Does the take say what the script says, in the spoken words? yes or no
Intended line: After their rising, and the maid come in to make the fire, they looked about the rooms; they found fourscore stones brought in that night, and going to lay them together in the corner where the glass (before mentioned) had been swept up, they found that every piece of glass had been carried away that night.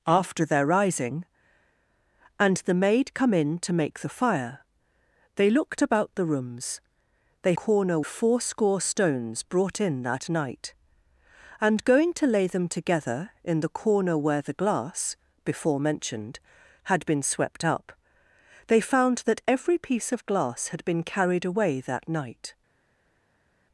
no